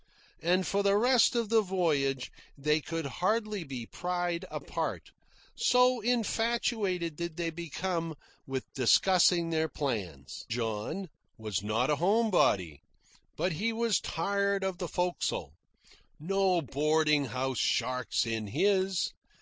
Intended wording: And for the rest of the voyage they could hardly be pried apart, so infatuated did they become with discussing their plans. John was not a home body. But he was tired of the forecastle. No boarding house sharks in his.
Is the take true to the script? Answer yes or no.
yes